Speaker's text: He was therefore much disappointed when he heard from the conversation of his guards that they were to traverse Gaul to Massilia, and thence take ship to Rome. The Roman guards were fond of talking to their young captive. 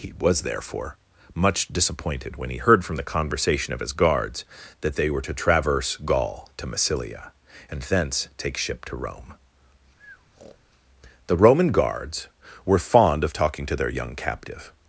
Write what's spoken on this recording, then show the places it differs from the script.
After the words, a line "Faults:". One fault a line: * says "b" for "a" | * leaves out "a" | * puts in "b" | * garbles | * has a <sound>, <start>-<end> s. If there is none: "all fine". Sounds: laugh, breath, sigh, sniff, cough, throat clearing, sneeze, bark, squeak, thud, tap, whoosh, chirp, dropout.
He was therefore much disappointed when he heard from the conversation of his guards that they were to traverse Gaul to Massilia, and thence take ship to Rome. The Roman guards were fond of talking to their young captive.
Faults:
* has a breath, 10.0-10.6 s